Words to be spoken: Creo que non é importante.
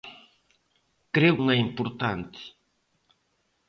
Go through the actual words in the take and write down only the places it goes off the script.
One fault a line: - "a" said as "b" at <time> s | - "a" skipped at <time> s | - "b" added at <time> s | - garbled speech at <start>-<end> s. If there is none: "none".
- "que" skipped at 1.4 s